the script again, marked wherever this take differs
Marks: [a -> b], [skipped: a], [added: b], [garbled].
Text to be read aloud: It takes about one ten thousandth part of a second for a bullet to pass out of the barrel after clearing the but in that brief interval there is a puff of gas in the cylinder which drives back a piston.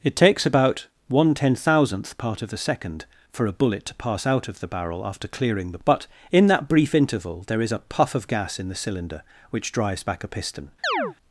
It takes about one ten thousandth part of a second for a bullet to pass out of the barrel after clearing the but in that brief interval there is a puff of gas in the cylinder which drives back a piston.